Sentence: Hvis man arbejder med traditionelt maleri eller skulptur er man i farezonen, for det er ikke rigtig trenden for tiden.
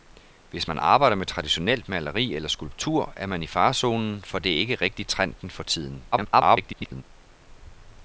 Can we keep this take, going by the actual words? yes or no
no